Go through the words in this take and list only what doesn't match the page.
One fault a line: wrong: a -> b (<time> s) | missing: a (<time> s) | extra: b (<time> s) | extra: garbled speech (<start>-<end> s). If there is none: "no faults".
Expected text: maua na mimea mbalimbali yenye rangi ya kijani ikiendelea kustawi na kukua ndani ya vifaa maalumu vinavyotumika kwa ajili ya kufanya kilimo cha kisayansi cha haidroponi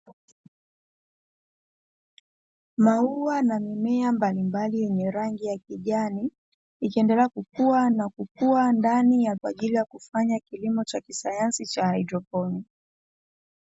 wrong: kustawi -> kukua (7.3 s)
missing: vifaa maalumu vinavyotumika (9.3 s)